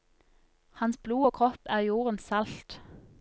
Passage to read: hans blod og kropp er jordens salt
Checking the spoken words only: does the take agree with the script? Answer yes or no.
yes